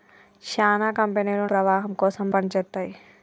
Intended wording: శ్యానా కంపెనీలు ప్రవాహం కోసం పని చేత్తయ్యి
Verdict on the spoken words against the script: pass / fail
pass